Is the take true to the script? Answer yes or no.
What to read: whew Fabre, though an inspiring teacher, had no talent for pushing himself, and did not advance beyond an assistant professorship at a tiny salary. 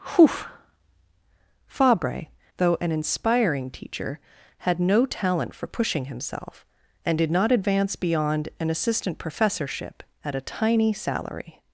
yes